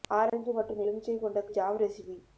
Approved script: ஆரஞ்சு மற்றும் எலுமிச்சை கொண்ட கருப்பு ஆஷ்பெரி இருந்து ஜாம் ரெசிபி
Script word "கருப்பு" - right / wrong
wrong